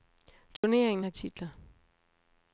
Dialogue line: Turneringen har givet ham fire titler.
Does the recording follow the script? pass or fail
fail